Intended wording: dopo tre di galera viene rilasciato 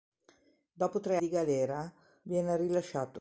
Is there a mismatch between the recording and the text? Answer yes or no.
no